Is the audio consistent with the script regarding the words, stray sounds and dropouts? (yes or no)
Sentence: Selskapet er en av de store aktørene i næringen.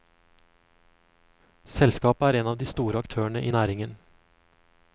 yes